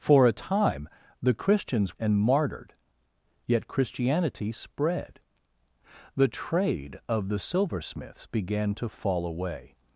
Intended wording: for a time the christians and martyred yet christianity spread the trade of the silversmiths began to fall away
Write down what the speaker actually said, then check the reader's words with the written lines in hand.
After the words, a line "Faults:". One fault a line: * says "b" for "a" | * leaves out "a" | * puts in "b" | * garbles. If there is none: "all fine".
for a time the christians and martyred yet christianity spread the trade of the silversmiths began to fall away
Faults:
all fine